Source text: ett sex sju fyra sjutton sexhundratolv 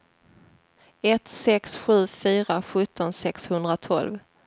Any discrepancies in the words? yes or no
no